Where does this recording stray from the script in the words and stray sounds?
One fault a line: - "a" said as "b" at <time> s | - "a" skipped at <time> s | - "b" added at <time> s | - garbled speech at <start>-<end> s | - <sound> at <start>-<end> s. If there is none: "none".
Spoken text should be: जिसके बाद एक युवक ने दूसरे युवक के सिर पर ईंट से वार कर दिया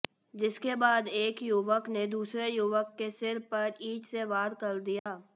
- dropout at 5.0-5.1 s